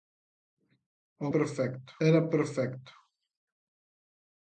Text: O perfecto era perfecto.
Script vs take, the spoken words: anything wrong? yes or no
no